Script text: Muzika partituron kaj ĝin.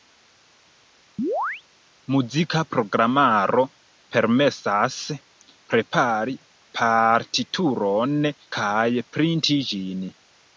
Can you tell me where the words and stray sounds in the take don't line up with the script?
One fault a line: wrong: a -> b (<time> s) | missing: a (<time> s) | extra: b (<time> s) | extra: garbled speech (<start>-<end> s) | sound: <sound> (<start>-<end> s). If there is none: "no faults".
sound: chirp (1.2-1.6 s)
extra: programaro permesas prepari (2.7 s)
extra: printi (9.2 s)